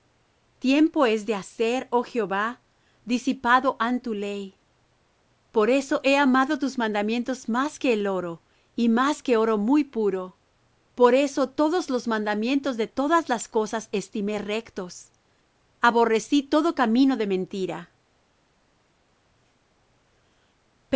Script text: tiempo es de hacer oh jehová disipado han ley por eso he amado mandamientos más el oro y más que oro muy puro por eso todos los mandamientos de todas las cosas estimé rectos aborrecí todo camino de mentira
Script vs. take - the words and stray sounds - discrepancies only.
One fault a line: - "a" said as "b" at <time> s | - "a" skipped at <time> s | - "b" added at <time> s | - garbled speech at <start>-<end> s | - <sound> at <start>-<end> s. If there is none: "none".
- "tu" added at 4.0 s
- "tus" added at 6.6 s
- "que" added at 7.8 s